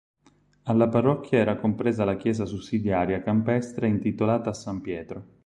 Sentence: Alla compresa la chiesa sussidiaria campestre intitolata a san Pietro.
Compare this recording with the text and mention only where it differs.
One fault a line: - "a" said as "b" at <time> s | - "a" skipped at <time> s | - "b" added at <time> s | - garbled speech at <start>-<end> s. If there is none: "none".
- "parrocchia era" added at 0.9 s